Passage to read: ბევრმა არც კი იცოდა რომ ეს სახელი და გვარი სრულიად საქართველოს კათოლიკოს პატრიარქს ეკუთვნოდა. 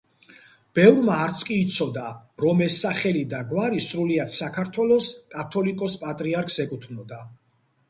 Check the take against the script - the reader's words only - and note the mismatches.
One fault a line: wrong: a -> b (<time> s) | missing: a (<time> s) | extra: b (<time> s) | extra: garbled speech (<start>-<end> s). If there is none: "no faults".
no faults